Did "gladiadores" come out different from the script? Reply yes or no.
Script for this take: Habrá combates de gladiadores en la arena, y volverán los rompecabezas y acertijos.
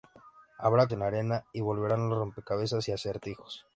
yes